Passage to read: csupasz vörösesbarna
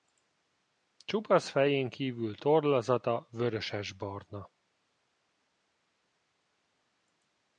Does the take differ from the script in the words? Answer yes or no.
yes